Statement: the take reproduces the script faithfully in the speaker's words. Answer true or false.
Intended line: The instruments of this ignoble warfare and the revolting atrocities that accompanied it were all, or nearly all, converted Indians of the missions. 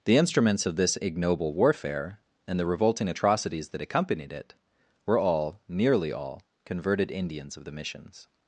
false